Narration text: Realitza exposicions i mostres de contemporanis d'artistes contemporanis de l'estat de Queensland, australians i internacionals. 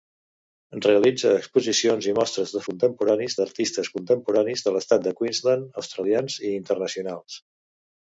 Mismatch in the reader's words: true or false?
false